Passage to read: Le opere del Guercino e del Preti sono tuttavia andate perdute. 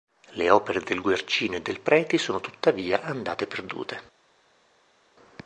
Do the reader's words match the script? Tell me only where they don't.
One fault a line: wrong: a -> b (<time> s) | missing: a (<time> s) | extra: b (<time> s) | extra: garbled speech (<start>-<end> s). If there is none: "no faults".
no faults